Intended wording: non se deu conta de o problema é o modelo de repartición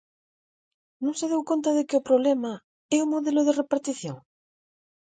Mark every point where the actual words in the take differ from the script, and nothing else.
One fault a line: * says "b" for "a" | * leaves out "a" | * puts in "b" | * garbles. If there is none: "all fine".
* puts in "que"